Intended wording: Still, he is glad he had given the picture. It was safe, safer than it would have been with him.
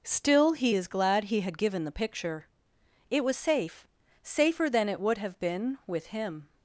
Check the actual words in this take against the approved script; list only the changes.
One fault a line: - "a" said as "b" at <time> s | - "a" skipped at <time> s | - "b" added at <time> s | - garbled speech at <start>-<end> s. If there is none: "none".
none